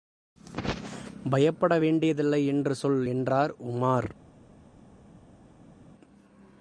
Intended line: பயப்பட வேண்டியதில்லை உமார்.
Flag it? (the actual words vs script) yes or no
yes